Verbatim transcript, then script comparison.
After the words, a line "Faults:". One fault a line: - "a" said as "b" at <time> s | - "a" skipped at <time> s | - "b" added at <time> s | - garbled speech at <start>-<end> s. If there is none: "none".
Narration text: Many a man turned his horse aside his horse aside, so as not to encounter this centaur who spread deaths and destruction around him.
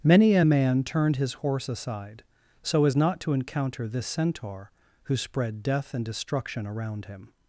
Many a man turned his horse aside, so as not to encounter this centaur who spread death and destruction around him.
Faults:
- "his horse aside" skipped at 2.2 s
- "deaths" said as "death" at 5.6 s